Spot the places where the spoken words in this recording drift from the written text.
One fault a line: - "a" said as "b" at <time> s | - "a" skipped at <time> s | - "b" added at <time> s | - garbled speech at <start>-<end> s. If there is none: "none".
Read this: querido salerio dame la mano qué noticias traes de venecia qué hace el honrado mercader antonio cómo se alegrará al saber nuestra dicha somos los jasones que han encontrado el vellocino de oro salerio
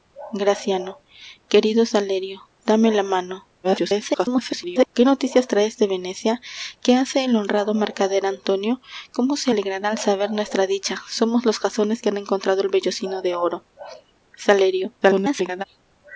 - garbled speech at 3.6-4.9 s
- garbled speech at 15.0-15.6 s